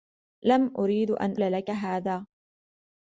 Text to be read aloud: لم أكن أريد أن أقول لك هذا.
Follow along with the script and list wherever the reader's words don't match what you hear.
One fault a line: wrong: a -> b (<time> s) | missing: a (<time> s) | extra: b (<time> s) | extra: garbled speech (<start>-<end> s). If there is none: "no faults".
missing: أكن (0.7 s)
missing: أقول (1.4 s)